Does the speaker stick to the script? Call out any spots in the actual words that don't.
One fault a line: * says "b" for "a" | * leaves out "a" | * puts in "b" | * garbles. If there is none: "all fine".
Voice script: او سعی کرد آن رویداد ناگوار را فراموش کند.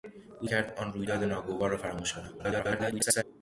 * leaves out "سعی"
* garbles